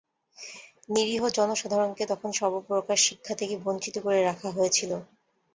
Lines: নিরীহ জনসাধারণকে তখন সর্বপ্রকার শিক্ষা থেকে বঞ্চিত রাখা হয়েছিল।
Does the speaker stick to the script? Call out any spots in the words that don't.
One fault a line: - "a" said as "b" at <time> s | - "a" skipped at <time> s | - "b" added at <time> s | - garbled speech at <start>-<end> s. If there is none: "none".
- "করে" added at 4.0 s